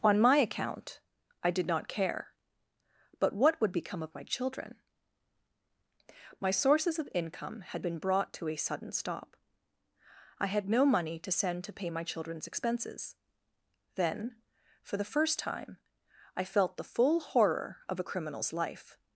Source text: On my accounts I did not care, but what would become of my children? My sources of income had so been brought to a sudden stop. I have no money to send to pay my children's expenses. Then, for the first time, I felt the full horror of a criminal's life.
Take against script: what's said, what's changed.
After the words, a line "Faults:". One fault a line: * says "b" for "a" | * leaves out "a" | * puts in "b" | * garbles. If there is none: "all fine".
On my account I did not care, but what would become of my children? My sources of income had been brought to a sudden stop. I had no money to send to pay my children's expenses. Then, for the first time, I felt the full horror of a criminal's life.
Faults:
* says "account" for "accounts"
* leaves out "so"
* says "had" for "have"